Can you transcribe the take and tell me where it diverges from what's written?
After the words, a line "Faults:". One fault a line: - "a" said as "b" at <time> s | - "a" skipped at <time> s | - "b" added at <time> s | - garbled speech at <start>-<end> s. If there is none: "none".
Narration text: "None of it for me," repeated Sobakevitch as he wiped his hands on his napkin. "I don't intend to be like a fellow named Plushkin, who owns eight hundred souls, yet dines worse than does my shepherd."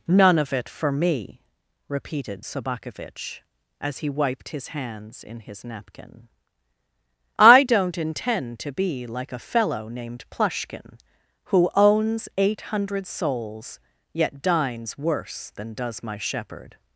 "None of it for me," repeated Sobakevitch as he wiped his hands in his napkin. "I don't intend to be like a fellow named Plushkin, who owns eight hundred souls, yet dines worse than does my shepherd."
Faults:
- "on" said as "in" at 5.2 s